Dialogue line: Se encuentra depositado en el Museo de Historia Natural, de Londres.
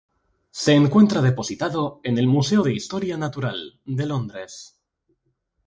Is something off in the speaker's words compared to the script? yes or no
no